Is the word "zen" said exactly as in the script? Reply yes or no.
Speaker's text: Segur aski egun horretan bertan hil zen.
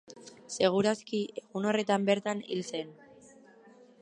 yes